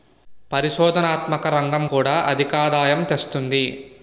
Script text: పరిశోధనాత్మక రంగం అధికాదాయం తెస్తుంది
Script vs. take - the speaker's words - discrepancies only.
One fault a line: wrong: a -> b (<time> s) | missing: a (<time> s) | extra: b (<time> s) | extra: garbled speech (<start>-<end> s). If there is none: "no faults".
extra: కూడా (1.8 s)